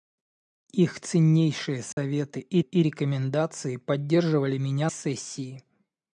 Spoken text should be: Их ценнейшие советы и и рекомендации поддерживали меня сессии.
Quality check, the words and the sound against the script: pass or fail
fail